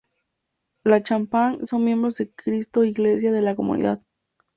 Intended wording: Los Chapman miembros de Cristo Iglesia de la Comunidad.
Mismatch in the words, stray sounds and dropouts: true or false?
true